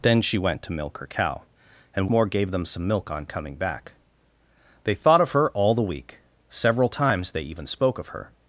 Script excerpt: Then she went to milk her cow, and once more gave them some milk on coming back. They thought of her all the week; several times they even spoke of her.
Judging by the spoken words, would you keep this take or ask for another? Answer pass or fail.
fail